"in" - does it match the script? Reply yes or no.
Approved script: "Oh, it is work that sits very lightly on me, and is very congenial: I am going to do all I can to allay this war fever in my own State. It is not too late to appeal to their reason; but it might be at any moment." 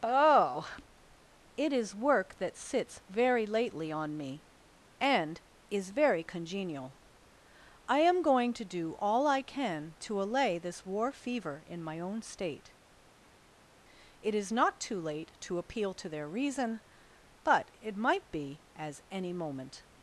yes